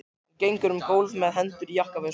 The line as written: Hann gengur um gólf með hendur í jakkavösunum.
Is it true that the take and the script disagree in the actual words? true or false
false